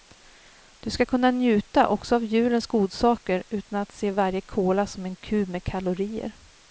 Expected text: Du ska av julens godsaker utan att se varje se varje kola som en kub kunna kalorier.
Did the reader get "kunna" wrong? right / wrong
wrong